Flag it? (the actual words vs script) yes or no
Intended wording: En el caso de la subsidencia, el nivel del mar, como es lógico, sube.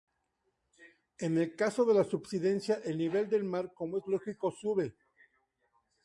no